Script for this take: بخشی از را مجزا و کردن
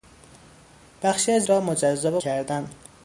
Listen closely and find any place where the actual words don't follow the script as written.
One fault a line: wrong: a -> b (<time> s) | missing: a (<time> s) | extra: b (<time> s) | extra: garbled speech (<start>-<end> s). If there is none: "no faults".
no faults